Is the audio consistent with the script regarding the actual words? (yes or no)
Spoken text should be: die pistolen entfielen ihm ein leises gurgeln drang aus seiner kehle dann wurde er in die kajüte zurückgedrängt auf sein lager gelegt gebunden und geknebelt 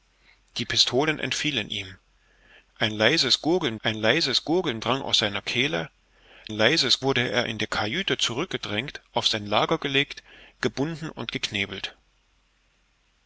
no